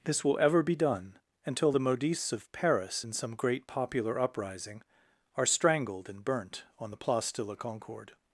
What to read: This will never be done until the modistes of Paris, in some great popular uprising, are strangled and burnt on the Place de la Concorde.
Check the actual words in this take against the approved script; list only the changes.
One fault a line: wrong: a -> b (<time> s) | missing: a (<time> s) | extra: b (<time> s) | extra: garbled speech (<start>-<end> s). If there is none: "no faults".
wrong: never -> ever (0.4 s)